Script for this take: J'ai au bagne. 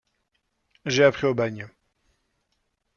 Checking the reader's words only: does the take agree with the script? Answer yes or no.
no